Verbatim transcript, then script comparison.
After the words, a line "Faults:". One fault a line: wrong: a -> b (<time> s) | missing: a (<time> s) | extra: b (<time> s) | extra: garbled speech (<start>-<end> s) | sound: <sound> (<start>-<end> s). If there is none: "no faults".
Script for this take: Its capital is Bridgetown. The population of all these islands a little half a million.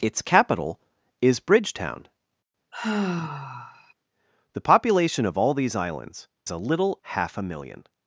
Its capital is Bridgetown. The population of all these islands a little half a million.
Faults:
sound: sigh (2.7-3.9 s)